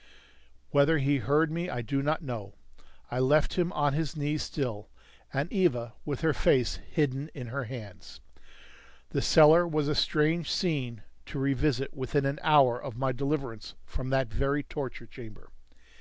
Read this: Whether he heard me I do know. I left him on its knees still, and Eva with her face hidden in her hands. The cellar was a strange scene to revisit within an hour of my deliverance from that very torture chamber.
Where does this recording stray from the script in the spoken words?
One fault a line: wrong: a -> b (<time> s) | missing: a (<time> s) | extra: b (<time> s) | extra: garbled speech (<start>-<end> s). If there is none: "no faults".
extra: not (2.0 s)
wrong: its -> his (3.9 s)